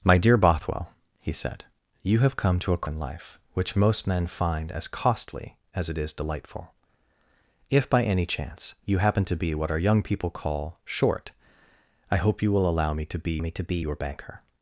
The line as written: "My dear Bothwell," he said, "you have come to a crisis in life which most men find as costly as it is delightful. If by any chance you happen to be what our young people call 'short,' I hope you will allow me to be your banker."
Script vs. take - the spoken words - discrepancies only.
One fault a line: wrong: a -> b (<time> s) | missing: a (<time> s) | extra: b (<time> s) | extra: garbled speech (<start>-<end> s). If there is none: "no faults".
missing: crisis (2.9 s)
extra: me to be (13.4 s)